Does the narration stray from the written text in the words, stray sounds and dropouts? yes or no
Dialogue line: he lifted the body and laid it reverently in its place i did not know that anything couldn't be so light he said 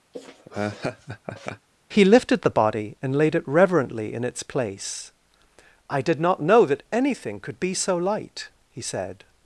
yes